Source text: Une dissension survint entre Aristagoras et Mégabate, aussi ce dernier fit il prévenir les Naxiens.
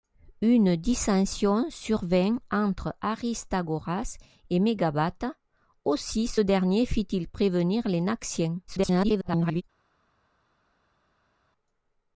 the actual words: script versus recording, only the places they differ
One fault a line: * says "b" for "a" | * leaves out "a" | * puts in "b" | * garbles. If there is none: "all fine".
* garbles